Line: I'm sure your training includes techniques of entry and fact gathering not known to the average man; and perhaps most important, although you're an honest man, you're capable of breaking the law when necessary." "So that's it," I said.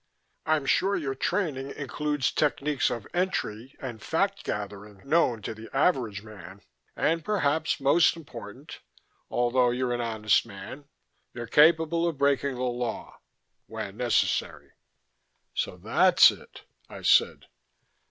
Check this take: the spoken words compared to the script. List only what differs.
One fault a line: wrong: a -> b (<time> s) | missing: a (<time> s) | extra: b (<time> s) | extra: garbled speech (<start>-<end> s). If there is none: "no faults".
missing: not (5.0 s)